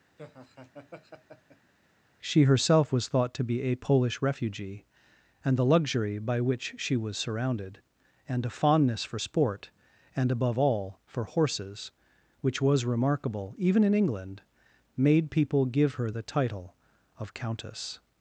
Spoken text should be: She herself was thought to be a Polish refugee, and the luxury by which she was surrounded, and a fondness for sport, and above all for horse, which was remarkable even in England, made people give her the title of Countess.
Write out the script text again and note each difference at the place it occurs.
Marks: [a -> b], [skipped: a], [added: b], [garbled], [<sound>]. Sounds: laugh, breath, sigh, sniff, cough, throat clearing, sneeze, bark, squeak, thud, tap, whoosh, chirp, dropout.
[laugh] She herself was thought to be a Polish refugee, and the luxury by which she was surrounded, and a fondness for sport, and above all for [horse, -> horses] which was remarkable even in England, made people give her the title of Countess.